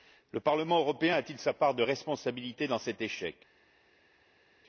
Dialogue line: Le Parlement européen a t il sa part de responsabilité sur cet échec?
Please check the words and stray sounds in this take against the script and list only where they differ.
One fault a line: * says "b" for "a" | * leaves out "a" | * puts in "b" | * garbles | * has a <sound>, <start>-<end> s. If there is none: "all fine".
* says "dans" for "sur"